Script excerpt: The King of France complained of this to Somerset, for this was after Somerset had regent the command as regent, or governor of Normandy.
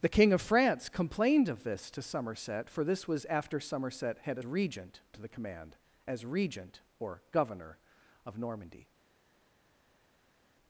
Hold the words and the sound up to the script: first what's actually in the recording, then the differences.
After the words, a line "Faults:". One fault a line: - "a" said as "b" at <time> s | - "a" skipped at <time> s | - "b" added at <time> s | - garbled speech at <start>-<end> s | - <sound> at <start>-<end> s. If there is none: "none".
The King of France complained of this to Somerset, for this was after Somerset had regent the command as regent, or governor of Normandy.
Faults:
none